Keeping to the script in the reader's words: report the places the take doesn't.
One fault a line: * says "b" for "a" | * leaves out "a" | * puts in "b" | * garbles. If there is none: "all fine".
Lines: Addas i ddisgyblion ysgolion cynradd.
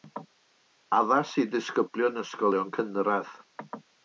all fine